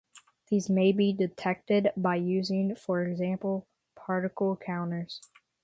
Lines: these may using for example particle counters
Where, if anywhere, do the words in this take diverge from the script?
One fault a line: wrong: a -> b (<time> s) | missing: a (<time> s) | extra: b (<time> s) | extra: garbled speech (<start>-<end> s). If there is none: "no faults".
extra: be detected by (0.9 s)